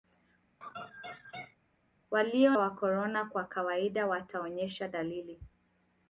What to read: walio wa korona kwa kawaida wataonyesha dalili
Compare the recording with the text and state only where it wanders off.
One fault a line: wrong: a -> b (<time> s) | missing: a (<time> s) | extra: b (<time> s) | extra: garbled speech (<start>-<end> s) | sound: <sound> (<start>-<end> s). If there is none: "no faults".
sound: laugh (0.6-1.6 s)